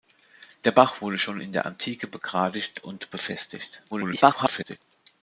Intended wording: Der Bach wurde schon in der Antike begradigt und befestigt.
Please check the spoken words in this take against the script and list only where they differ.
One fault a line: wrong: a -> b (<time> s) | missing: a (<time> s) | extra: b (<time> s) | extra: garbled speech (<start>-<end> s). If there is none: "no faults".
extra: garbled speech (3.9-4.8 s)